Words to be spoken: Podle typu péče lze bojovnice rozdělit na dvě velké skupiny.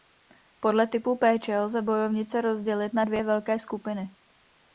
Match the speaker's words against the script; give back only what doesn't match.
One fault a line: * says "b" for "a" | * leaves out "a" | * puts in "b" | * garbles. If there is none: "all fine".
all fine